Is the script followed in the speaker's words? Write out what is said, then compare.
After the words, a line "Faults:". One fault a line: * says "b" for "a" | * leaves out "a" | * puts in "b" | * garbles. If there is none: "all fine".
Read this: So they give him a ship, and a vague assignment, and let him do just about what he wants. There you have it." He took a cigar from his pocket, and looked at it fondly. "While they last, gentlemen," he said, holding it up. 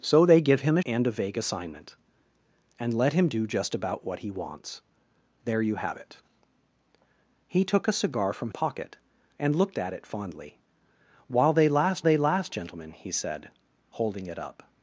So they give him a and a vague assignment, and let him do just about what he wants. There you have it." He took a cigar from pocket, and looked at it fondly. "While they last they last, gentlemen," he said, holding it up.
Faults:
* leaves out "ship"
* leaves out "his"
* puts in "they last"